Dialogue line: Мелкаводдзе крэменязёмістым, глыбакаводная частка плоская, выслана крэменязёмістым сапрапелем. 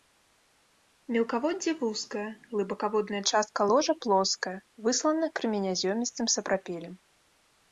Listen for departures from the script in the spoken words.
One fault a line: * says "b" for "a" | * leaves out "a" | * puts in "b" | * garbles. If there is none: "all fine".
* says "вузкае" for "крэменязёмістым"
* puts in "ложа"